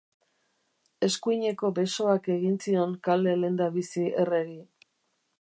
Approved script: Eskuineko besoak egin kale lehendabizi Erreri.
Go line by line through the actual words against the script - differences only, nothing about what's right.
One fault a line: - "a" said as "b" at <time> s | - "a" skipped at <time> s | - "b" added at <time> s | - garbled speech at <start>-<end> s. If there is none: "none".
- "zion" added at 2.7 s